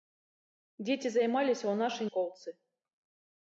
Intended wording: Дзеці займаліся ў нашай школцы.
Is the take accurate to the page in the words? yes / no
yes